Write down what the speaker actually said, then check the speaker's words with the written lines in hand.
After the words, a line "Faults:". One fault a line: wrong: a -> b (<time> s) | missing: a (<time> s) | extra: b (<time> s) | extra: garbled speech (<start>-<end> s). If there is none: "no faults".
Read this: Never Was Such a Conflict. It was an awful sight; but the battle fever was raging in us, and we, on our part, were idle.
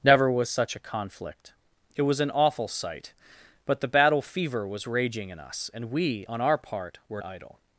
Never Was Such a Conflict. It was an awful sight; but the battle fever was raging in us, and we, on our part, were idle.
Faults:
no faults